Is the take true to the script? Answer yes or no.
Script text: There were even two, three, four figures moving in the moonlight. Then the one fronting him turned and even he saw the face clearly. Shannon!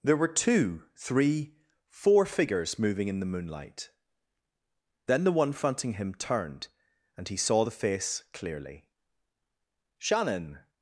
no